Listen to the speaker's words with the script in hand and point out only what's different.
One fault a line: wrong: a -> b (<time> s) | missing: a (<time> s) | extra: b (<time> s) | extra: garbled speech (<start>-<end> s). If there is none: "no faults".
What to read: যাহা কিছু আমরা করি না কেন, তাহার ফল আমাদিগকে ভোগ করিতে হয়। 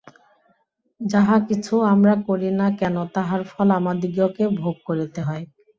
no faults